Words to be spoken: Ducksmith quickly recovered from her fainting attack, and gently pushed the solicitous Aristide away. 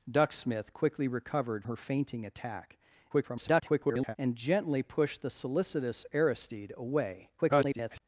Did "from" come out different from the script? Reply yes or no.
yes